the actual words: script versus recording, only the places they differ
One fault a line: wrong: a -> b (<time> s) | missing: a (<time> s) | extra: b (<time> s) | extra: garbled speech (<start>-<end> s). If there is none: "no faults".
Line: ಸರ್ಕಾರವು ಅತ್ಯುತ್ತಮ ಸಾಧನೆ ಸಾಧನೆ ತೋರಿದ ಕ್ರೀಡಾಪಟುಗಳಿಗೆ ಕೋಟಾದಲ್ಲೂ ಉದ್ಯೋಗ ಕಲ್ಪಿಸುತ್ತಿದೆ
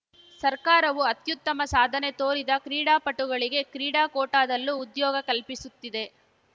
missing: ಸಾಧನೆ (2.1 s)
extra: ಕ್ರೀಡಾ (3.7 s)